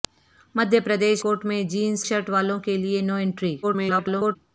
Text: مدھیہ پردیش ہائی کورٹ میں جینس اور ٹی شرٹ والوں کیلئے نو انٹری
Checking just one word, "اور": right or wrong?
wrong